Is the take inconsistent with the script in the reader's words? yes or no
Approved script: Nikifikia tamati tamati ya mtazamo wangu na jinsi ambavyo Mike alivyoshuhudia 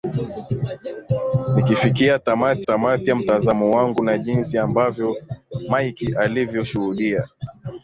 no